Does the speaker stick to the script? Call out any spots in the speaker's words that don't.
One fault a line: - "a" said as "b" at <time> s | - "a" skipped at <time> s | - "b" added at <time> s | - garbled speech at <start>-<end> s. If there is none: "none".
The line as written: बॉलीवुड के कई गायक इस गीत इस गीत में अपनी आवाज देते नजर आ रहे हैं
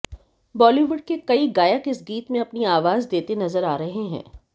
- "इस गीत" skipped at 2.3 s